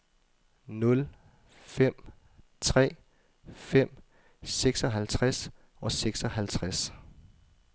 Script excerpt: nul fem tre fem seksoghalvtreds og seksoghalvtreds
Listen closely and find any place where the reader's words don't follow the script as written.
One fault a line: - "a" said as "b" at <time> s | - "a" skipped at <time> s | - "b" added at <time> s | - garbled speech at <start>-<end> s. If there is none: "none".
none